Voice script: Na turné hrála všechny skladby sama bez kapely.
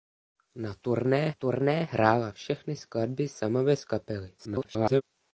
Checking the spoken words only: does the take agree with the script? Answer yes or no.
no